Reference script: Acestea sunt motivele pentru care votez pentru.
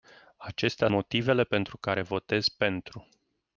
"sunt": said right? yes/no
no